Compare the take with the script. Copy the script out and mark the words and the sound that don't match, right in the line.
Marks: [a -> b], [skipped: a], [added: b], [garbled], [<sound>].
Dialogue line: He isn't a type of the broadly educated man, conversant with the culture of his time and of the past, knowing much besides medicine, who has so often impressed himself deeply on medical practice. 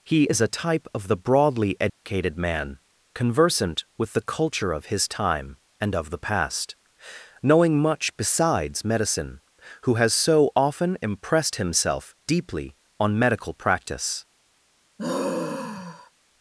He [isn't -> is] a type of the broadly educated [dropout] man, conversant with the culture of his time and of the past, knowing much besides medicine, who has so often impressed himself deeply on medical practice. [sigh]